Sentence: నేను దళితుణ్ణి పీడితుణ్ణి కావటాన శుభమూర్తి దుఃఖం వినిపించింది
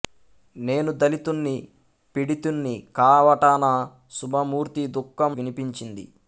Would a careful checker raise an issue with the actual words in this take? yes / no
no